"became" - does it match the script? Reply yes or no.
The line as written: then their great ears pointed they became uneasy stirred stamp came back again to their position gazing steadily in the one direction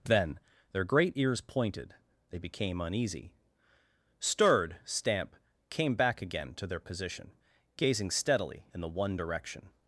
yes